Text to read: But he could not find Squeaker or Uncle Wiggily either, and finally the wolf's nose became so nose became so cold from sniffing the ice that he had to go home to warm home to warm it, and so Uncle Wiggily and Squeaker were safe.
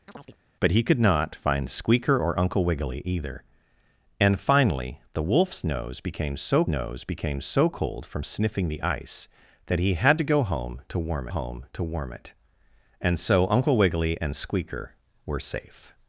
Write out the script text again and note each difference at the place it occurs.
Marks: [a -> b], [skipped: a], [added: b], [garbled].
But he could not find Squeaker or Uncle Wiggily either, and finally the wolf's nose became so nose became so cold from sniffing the ice that he had to go home to warm home to warm it, and so Uncle Wiggily and Squeaker were safe.